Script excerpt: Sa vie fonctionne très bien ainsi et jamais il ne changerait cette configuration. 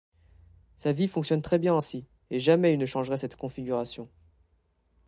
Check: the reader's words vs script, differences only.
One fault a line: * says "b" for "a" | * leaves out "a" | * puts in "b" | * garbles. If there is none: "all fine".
all fine